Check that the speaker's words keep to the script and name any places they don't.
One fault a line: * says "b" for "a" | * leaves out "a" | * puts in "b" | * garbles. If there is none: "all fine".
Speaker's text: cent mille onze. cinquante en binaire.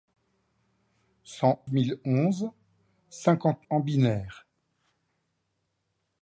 all fine